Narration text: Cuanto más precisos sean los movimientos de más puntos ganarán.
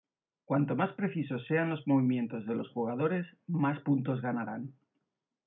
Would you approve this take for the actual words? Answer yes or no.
no